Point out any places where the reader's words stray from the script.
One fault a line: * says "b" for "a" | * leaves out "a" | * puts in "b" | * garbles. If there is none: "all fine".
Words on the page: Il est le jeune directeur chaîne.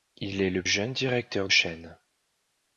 all fine